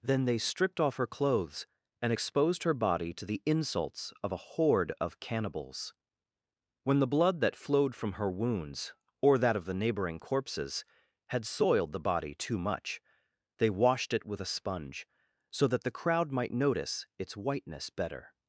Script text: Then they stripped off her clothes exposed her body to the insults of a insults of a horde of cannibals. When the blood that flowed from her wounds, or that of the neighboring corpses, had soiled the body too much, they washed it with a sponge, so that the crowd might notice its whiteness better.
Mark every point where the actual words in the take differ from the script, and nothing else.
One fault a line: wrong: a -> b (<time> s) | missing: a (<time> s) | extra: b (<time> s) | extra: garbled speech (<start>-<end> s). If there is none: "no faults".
extra: and (2.0 s)
missing: insults of a (4.6 s)